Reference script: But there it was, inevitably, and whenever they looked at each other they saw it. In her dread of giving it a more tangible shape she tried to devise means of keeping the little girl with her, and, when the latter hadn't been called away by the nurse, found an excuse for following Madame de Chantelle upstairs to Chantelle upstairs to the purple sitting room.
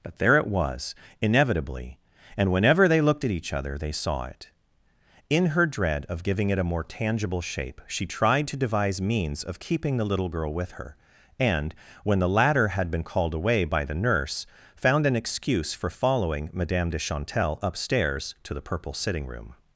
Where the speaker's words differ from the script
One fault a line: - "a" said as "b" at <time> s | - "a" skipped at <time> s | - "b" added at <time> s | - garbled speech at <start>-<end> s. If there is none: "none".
- "hadn't" said as "had" at 12.7 s
- "Chantelle upstairs to" skipped at 18.5 s